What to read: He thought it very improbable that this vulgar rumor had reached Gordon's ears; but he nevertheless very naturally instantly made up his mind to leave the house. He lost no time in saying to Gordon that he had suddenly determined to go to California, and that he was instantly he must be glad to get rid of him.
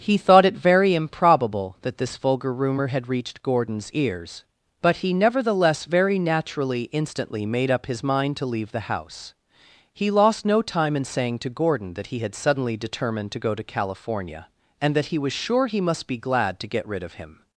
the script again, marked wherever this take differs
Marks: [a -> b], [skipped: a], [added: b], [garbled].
He thought it very improbable that this vulgar rumor had reached Gordon's ears; but he nevertheless very naturally instantly made up his mind to leave the house. He lost no time in saying to Gordon that he had suddenly determined to go to California, and that he was [instantly -> sure] he must be glad to get rid of him.